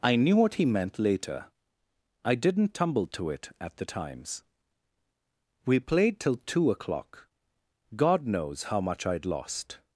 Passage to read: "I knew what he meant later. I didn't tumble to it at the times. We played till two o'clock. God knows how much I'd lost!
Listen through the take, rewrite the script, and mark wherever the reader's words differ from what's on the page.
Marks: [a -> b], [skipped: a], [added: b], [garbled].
"I knew what he meant later. I didn't tumble to it at the times. We played till two o'clock. God knows how much I'd lost!